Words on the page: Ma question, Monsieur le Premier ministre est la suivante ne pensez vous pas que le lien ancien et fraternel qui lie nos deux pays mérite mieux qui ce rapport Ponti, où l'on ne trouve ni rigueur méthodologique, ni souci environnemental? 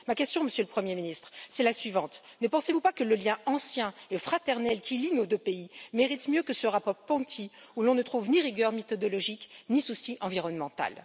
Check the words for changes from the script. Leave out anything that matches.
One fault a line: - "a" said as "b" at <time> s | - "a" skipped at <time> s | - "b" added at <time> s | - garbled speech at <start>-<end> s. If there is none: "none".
- "qui" said as "que" at 6.4 s